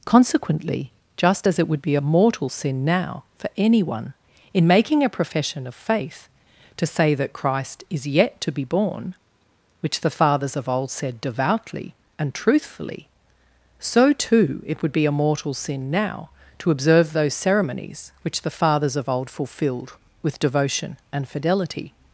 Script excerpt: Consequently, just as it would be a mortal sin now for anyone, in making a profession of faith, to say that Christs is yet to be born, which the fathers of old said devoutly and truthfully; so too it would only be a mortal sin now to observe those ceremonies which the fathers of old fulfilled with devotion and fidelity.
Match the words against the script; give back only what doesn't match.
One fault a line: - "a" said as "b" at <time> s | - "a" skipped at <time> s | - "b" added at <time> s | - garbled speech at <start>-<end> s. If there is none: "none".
- "Christs" said as "Christ" at 7.3 s
- "only" skipped at 14.9 s